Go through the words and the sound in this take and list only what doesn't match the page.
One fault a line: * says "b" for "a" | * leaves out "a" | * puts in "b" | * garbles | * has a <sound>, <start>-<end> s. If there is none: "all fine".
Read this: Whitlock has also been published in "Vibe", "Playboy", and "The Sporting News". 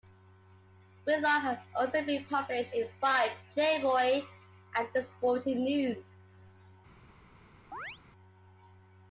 * has a chirp, 7.7-8.0 s